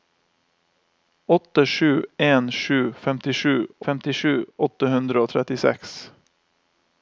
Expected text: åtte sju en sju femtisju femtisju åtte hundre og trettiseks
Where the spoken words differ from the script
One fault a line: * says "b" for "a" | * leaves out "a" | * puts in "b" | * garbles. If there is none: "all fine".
all fine